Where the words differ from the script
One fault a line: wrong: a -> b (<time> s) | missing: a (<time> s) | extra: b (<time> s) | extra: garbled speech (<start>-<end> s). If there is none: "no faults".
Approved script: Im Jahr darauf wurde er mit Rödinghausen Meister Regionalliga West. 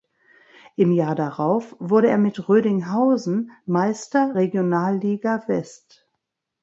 no faults